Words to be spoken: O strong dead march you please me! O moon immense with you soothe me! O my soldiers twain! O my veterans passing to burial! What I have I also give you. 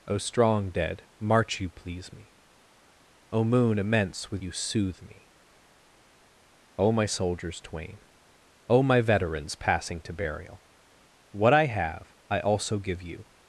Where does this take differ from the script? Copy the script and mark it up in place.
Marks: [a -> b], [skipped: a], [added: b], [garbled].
O strong dead march you please me! O moon immense with you soothe me! O my soldiers twain! O my veterans passing to burial! What I have I also give you.